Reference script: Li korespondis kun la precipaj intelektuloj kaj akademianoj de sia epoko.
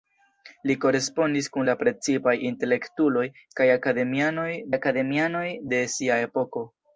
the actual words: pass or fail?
fail